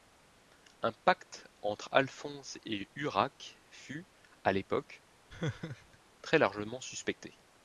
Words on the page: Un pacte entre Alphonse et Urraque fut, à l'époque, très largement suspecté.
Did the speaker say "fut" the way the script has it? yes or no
yes